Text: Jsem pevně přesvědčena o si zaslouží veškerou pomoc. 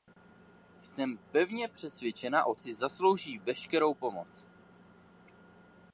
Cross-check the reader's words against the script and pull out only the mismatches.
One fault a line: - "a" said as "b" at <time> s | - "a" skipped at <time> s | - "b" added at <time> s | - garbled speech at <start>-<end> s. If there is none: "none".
none